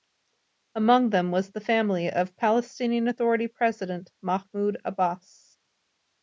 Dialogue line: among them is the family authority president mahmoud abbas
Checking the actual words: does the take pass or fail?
fail